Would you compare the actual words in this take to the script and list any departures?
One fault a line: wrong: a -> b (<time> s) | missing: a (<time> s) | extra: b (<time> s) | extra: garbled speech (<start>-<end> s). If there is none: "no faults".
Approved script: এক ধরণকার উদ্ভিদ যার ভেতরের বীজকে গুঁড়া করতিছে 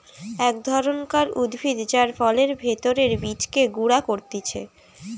extra: ফলের (2.2 s)